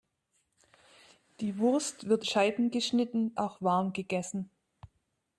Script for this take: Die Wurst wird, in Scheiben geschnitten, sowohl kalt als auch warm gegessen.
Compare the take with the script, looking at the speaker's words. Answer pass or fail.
fail